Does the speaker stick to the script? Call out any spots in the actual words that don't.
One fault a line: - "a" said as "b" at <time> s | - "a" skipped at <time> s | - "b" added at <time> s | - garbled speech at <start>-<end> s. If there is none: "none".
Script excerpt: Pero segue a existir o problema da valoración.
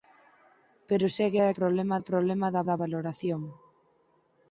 - "existir" said as "problema" at 1.6 s
- "da" added at 2.7 s